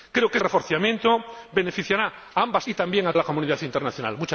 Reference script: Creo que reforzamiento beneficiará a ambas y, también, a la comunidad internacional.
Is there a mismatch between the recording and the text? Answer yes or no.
no